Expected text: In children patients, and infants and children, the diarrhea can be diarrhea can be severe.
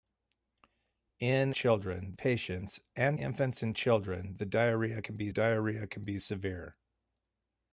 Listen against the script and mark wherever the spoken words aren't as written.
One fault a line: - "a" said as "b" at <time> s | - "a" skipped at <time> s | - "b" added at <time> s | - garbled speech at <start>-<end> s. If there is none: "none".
none